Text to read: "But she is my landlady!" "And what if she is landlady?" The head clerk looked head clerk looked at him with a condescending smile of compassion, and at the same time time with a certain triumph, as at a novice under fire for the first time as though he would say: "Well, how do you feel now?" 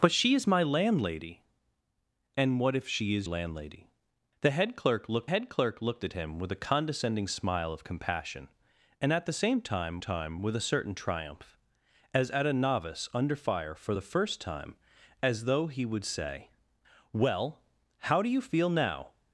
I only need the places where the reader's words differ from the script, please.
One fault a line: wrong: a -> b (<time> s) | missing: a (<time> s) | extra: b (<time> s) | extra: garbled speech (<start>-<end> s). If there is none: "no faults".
no faults